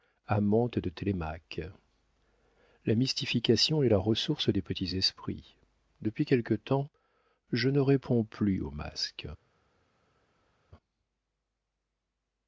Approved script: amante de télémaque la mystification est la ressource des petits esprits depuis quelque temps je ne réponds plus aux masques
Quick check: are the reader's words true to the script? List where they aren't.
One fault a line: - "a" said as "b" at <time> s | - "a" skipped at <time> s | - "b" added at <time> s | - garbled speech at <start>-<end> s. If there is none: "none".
none